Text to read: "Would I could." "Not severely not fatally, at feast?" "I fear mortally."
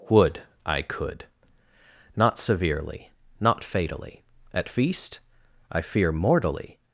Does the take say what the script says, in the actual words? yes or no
yes